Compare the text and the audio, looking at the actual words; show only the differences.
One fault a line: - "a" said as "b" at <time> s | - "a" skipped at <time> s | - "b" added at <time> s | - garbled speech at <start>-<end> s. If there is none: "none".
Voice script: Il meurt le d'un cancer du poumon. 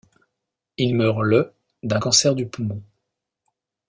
none